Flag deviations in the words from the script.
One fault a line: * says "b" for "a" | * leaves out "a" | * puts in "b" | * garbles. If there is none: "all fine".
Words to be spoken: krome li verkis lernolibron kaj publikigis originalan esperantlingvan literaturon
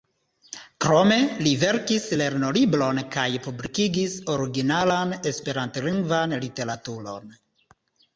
all fine